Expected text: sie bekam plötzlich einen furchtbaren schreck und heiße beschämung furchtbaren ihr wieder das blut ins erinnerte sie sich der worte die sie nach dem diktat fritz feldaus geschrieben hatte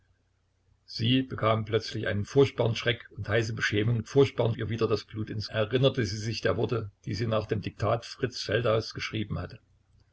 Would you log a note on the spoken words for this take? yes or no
no